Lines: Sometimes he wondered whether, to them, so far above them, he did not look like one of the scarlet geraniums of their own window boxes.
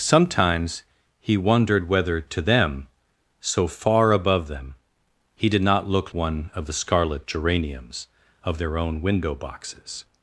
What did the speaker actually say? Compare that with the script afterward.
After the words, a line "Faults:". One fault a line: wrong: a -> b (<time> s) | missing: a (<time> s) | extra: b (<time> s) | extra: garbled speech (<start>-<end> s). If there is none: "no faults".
Sometimes he wondered whether, to them, so far above them, he did not look one of the scarlet geraniums of their own window boxes.
Faults:
missing: like (6.1 s)